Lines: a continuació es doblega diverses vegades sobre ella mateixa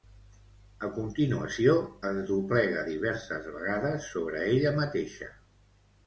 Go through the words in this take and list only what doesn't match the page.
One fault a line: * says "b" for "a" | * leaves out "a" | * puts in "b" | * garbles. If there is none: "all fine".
all fine